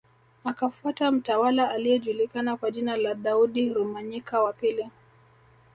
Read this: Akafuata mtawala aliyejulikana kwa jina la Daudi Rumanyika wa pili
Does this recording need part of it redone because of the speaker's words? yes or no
no